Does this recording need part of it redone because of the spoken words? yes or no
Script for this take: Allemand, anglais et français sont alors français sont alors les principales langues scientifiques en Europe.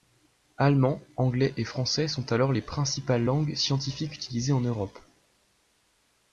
yes